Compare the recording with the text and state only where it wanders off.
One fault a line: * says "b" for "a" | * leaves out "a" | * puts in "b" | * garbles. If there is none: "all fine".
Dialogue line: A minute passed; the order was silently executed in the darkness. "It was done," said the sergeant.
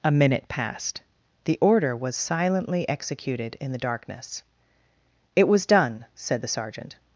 all fine